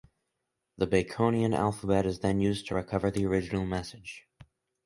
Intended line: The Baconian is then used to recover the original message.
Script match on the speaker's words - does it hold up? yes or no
no